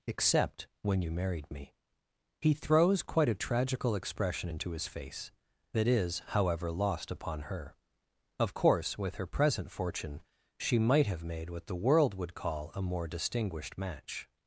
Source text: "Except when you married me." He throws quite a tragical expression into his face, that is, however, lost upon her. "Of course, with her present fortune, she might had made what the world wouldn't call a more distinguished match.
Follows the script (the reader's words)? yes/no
no